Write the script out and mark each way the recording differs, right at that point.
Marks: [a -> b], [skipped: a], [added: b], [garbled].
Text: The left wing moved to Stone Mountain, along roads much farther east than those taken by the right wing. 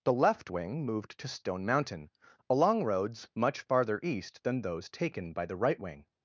The left wing moved to Stone Mountain, along roads much farther east than those taken by the right wing.